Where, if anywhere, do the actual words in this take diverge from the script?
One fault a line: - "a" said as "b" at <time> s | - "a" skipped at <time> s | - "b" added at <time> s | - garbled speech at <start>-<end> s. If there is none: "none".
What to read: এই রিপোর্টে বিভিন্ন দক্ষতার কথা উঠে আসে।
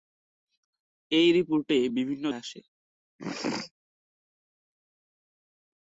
- "দক্ষতার কথা উঠে" skipped at 2.2 s